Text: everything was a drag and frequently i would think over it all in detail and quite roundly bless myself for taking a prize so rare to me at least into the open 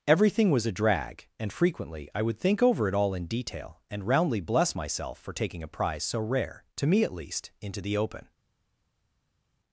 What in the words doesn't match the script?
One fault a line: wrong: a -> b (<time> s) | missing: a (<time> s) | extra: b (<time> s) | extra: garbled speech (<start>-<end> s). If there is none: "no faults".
missing: quite (4.1 s)